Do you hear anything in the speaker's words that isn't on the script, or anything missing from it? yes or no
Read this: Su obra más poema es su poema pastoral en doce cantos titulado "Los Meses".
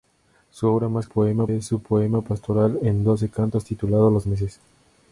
no